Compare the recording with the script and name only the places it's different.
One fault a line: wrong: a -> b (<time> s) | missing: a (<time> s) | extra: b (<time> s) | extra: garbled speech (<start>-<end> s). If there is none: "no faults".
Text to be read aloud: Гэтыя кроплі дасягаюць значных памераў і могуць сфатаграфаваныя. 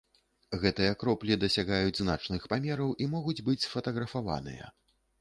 extra: быць (3.5 s)